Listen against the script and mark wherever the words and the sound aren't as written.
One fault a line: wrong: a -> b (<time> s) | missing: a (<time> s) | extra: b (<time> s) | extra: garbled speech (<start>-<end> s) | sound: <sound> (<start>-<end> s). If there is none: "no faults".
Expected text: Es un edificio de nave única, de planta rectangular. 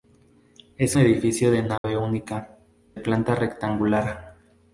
missing: un (1.0 s)
sound: dropout (1.8-1.8 s)
missing: de (2.6 s)